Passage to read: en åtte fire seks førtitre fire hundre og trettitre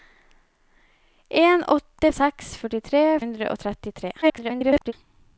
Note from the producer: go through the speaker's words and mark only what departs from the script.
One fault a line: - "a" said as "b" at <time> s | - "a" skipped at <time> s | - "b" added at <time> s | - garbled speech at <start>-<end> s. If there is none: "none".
- "fire" skipped at 2.1 s
- "fire" skipped at 3.0 s
- garbled speech at 4.2-4.9 s